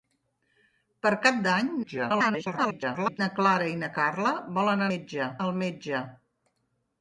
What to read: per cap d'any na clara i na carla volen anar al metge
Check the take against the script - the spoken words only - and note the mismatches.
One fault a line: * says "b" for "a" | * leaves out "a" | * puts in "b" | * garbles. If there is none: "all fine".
* garbles
* says "metge" for "anar"